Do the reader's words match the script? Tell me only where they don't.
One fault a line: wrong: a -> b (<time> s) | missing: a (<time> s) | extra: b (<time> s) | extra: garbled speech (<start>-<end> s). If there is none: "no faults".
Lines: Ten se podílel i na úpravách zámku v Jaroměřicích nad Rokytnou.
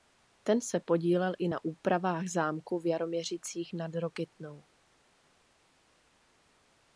no faults